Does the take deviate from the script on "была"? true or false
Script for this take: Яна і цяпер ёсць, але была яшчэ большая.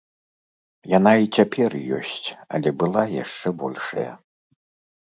false